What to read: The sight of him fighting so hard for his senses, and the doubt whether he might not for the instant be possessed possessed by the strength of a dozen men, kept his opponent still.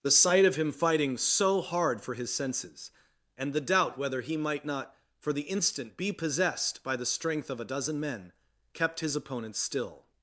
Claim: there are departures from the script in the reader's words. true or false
true